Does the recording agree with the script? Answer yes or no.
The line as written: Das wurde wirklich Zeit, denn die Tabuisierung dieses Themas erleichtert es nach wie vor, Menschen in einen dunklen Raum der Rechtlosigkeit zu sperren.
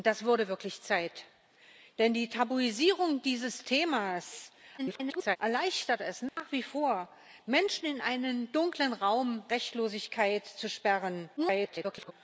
no